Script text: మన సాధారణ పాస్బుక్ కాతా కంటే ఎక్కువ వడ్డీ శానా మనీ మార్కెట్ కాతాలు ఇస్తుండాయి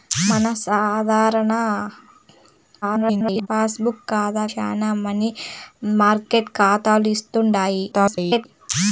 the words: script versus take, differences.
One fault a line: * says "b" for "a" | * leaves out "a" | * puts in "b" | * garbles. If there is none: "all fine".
* garbles
* leaves out "కంటే ఎక్కువ వడ్డీ"
* garbles